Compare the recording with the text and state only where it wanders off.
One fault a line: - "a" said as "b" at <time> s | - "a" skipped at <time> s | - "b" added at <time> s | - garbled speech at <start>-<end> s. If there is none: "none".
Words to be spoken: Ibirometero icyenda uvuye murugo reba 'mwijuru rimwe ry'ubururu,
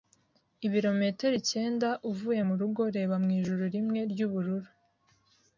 none